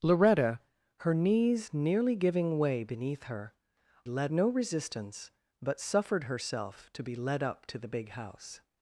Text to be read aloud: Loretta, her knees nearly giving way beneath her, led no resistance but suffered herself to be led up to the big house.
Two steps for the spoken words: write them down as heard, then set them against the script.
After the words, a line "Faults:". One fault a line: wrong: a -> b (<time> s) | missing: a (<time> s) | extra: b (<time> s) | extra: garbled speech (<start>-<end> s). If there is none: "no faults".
Loretta, her knees nearly giving way beneath her, led no resistance but suffered herself to be led up to the big house.
Faults:
no faults